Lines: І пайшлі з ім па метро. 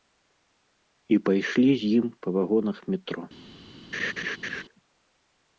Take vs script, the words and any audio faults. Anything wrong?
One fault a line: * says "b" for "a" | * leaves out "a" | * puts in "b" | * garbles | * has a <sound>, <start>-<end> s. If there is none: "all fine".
* puts in "вагонах"
* has a laugh, 3.9-4.6 s